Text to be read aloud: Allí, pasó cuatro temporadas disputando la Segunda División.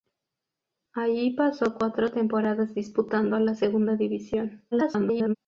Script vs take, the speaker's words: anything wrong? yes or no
yes